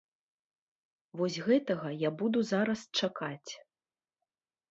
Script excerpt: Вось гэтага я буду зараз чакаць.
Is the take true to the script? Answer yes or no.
yes